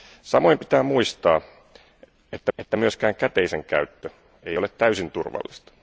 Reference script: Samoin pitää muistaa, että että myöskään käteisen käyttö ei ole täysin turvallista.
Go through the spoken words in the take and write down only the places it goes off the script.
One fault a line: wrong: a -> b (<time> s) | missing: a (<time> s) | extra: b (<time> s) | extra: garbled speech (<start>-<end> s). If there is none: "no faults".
no faults